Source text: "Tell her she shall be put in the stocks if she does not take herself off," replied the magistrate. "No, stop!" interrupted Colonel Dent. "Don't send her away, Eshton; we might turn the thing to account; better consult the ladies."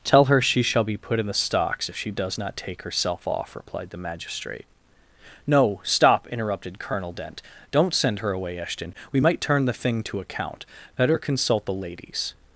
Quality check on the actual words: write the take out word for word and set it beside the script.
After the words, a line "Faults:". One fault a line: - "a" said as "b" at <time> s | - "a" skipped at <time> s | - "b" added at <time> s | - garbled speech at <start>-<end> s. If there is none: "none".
"Tell her she shall be put in the stocks if she does not take herself off," replied the magistrate. "No, stop!" interrupted Colonel Dent. "Don't send her away, Eshton; we might turn the thing to account; better consult the ladies."
Faults:
none